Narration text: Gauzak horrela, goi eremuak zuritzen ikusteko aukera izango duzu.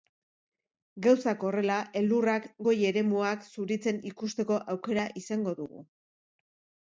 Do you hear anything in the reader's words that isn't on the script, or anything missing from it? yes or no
yes